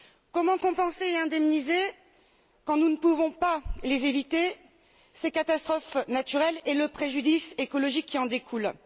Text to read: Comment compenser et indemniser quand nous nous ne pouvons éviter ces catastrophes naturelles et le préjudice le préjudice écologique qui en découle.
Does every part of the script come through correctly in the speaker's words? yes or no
no